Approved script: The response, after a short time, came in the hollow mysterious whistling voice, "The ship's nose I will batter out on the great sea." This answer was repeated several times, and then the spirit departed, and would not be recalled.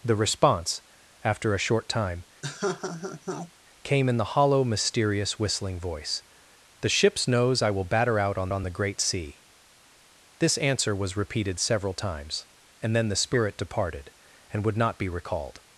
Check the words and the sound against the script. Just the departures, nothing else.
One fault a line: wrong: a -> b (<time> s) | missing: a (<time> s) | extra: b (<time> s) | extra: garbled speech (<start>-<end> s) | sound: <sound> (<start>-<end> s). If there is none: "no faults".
sound: laugh (2.4-3.5 s)
extra: on (8.5 s)